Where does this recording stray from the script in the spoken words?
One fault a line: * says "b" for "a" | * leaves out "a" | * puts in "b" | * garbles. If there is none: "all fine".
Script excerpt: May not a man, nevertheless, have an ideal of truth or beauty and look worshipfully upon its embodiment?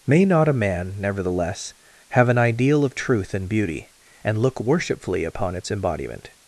* says "and" for "or"